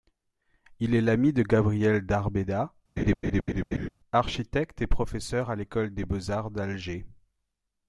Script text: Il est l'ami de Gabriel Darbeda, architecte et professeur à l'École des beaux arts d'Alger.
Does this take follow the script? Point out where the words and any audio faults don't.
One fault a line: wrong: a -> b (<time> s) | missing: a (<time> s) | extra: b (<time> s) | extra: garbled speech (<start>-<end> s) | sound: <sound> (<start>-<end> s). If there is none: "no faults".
sound: laugh (3.0-3.9 s)